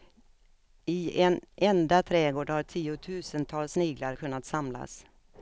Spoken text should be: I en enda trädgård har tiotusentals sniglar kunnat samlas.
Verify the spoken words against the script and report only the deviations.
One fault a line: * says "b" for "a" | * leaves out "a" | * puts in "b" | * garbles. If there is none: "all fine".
all fine